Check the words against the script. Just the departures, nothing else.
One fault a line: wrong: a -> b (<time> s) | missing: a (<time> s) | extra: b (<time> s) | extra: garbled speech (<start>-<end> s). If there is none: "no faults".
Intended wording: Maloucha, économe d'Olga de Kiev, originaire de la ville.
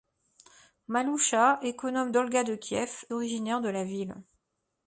no faults